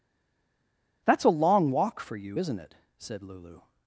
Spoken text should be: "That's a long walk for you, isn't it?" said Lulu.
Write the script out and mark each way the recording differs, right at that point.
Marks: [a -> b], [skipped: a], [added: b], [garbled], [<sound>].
"That's a long walk for you, isn't it?" said Lulu.